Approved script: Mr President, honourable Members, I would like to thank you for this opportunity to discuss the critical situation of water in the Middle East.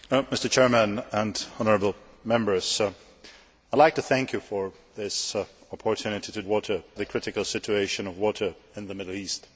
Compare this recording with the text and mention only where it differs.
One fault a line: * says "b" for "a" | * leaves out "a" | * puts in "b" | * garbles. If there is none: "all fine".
* says "water" for "discuss"